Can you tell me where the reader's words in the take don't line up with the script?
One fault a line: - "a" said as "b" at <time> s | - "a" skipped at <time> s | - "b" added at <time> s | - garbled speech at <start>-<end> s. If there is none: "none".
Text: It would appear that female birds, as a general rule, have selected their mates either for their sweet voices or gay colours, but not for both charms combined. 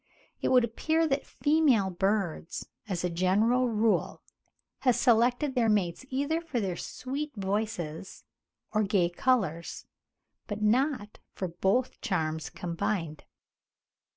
none